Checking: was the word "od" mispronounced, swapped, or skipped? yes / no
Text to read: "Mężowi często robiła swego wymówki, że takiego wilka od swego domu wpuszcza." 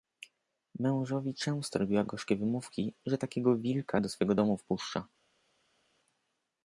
yes